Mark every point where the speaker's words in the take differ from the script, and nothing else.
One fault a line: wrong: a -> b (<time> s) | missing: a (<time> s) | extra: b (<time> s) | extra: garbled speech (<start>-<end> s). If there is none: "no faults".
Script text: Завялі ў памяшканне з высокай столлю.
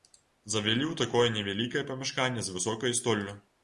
extra: такое невялікае (1.0 s)